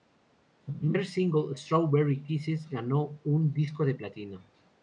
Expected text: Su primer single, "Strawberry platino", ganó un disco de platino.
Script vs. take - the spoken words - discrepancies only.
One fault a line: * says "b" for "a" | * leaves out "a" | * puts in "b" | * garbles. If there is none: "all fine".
* says "kisses" for "platino"